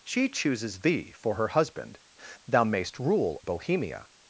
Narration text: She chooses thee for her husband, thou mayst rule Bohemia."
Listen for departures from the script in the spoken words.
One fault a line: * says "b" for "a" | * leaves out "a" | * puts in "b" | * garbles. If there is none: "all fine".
all fine